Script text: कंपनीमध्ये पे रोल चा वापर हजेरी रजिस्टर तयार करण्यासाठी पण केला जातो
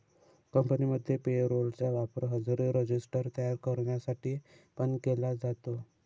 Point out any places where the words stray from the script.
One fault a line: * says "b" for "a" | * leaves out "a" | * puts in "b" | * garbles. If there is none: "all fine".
all fine